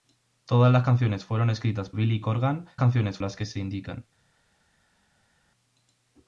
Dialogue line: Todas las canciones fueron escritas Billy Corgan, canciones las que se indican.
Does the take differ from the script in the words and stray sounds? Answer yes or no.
no